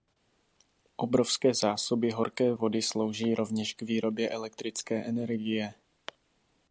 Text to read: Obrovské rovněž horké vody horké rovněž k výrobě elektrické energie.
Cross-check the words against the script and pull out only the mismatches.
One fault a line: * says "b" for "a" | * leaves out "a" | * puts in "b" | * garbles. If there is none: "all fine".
* says "zásoby" for "rovněž"
* says "slouží" for "horké"